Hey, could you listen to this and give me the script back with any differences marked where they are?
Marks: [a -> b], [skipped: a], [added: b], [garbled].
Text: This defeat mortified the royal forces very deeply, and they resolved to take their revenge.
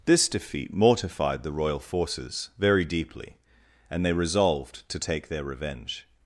This defeat mortified the royal forces very deeply, and they resolved to take their revenge.